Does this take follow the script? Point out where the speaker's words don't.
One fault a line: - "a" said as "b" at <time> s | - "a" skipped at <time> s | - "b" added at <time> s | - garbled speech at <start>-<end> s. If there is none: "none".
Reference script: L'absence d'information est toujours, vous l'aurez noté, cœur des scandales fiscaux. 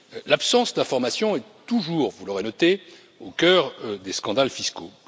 - "au" added at 3.2 s